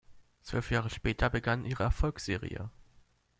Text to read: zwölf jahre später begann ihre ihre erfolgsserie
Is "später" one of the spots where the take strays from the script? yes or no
no